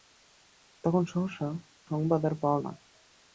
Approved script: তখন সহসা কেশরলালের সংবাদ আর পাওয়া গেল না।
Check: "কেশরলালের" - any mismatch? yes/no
yes